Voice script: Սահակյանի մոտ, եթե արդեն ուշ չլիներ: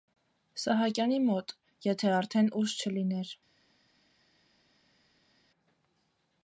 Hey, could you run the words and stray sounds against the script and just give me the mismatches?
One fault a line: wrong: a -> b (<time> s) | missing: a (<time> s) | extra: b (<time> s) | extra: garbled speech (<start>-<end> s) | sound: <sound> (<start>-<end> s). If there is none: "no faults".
no faults